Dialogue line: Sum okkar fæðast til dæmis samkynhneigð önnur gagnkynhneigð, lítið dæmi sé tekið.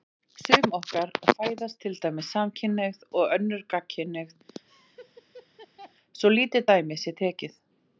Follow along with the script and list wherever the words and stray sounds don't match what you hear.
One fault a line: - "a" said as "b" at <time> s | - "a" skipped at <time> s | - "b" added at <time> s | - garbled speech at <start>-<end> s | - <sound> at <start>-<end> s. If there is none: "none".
- "og" added at 3.2 s
- laugh at 4.7-5.9 s
- "svo" added at 6.2 s